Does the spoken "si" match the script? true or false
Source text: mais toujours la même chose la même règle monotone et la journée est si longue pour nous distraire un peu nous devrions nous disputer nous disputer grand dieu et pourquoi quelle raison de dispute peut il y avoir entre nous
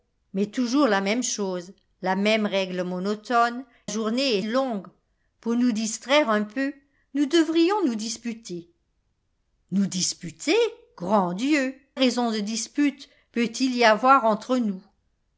false